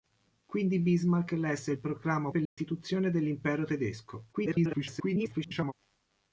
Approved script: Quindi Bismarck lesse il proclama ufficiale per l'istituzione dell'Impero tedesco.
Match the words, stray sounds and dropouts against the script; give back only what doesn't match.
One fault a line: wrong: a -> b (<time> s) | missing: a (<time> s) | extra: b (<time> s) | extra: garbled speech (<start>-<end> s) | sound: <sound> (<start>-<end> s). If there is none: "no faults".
missing: ufficiale (2.3 s)
sound: dropout (2.5-2.6 s)
extra: garbled speech (4.3-5.7 s)